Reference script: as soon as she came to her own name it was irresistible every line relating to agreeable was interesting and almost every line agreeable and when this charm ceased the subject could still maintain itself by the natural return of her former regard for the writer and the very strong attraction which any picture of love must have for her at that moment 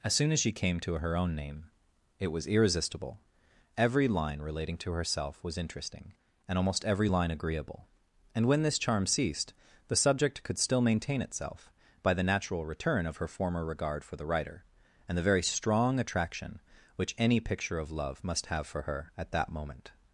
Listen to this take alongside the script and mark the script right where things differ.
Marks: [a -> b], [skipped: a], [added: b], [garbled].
as soon as she came to her own name it was irresistible every line relating to [agreeable -> herself] was interesting and almost every line agreeable and when this charm ceased the subject could still maintain itself by the natural return of her former regard for the writer and the very strong attraction which any picture of love must have for her at that moment